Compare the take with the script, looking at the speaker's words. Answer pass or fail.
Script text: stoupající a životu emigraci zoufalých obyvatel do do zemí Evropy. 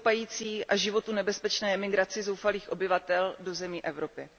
fail